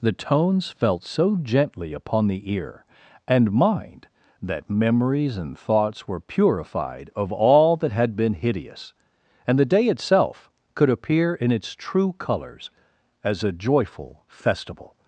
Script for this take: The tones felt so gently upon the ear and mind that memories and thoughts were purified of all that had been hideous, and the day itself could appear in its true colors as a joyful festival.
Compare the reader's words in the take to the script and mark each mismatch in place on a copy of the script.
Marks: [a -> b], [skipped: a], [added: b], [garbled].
The tones felt so gently upon the ear and mind that memories and thoughts were purified of all that had been hideous, and the day itself could appear in its true colors as a joyful festival.